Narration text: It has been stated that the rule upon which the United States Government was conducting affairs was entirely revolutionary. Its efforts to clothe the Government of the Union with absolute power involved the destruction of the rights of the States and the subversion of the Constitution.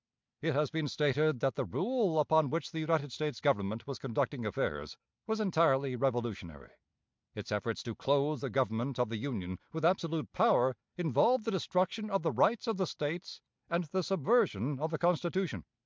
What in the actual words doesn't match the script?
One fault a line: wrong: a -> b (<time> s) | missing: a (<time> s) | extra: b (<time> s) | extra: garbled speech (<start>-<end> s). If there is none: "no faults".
no faults